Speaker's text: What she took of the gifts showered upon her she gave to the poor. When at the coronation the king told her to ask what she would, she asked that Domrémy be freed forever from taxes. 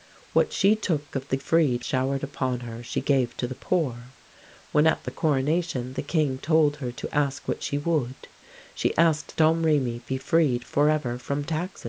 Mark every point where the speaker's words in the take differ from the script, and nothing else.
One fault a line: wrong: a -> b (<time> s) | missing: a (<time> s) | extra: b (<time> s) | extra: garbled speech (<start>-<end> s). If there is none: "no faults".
wrong: gifts -> freed (1.4 s)
missing: that (9.4 s)